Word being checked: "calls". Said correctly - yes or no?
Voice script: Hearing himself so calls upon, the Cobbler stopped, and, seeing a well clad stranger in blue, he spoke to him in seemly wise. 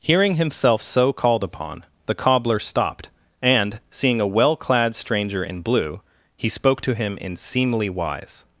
no